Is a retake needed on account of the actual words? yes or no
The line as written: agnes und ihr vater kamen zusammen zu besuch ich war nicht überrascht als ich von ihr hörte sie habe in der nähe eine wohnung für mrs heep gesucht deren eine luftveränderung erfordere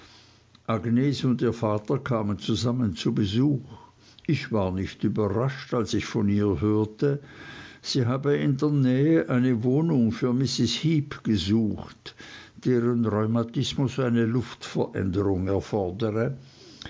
yes